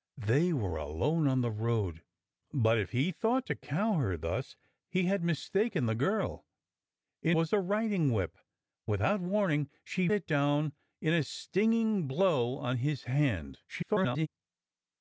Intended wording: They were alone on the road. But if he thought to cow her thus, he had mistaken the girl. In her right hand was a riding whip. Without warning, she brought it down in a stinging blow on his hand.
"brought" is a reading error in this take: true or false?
true